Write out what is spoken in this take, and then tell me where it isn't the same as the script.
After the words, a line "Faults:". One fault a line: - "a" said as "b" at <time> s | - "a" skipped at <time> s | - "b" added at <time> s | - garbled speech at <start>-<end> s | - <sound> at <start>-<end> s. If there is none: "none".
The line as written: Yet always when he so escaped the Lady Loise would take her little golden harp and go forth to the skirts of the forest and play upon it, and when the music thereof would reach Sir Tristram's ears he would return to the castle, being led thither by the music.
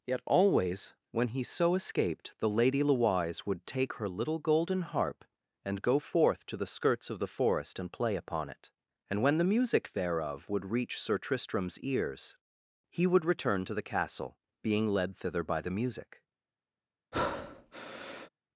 Yet always when he so escaped the Lady Loise would take her little golden harp and go forth to the skirts of the forest and play upon it, and when the music thereof would reach Sir Tristram's ears he would return to the castle, being led thither by the music.
Faults:
- breath at 17.1-18.3 s